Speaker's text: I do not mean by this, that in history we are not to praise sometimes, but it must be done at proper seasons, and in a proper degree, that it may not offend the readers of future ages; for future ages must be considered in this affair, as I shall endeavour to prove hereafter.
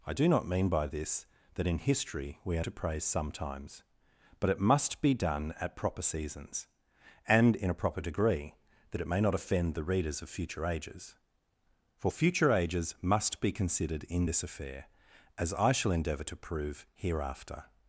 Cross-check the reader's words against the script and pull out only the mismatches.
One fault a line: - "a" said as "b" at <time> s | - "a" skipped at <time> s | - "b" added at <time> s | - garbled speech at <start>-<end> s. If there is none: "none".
- "not" skipped at 2.6 s